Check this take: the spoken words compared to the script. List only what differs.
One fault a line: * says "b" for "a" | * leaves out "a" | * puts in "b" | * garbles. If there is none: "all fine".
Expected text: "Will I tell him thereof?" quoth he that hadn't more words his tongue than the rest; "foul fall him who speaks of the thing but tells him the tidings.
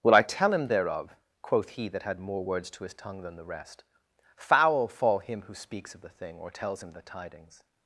* says "had" for "hadn't"
* puts in "to"
* says "or" for "but"